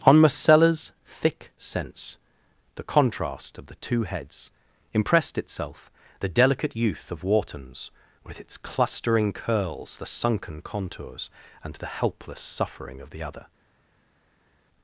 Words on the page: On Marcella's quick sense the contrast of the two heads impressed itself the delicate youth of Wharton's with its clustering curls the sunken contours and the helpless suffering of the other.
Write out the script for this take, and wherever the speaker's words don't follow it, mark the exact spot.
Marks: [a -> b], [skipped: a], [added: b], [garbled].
On Marcella's [quick -> thick] sense the contrast of the two heads impressed itself the delicate youth of Wharton's with its clustering curls the sunken contours and the helpless suffering of the other.